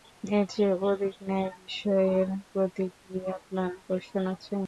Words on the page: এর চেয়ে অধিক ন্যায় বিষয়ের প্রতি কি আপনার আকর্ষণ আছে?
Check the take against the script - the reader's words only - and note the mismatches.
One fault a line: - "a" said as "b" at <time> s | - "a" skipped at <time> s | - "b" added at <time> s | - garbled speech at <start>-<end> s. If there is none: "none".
none